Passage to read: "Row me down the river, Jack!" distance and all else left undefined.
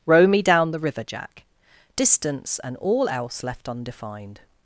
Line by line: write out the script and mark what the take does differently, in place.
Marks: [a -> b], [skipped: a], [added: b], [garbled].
"Row me down the river, Jack!" distance and all else left undefined.